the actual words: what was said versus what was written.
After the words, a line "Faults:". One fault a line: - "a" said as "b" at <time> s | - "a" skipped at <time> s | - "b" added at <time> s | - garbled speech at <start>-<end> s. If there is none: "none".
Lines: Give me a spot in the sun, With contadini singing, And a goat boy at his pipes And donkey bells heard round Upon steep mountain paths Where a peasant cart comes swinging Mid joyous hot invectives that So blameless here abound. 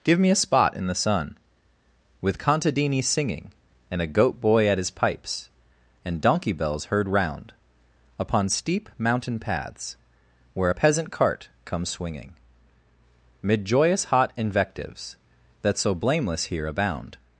Give me a spot in the sun, With contadini singing, And a goat boy at his pipes And donkey bells heard round Upon steep mountain paths Where a peasant cart comes swinging Mid joyous hot invectives that So blameless here abound.
Faults:
none